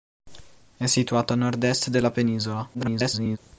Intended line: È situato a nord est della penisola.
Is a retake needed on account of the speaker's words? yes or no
yes